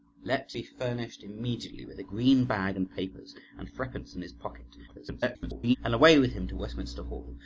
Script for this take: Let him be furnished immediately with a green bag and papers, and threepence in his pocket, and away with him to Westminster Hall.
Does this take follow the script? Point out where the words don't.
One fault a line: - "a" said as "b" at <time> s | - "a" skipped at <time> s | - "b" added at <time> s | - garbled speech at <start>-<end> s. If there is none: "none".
- "him" skipped at 0.5 s
- garbled speech at 4.9-5.8 s